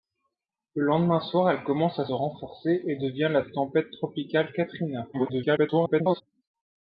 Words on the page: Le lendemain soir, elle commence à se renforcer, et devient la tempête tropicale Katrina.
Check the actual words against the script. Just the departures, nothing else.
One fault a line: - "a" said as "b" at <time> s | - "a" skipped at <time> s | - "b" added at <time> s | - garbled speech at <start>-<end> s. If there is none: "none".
- "se" skipped at 2.1 s
- garbled speech at 5.1-6.2 s